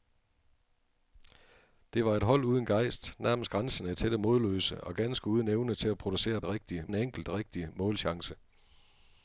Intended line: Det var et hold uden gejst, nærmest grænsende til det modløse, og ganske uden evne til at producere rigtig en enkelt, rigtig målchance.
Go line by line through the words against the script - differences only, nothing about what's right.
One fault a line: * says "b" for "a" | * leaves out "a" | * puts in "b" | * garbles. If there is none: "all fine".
all fine